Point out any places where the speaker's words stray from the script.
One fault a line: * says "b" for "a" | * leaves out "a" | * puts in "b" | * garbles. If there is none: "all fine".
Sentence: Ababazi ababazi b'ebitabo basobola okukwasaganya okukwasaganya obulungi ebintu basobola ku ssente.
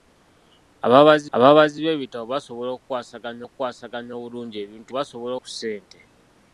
all fine